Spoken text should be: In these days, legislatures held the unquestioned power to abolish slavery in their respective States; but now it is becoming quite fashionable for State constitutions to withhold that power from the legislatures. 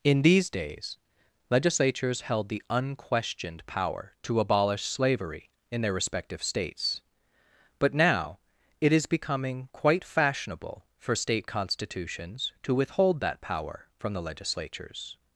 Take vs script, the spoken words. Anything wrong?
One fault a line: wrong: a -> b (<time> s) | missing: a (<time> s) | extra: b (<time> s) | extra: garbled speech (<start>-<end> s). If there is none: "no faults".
no faults